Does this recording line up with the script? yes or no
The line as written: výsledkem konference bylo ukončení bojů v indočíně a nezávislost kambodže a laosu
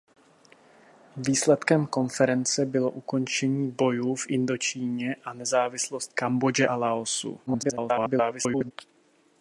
no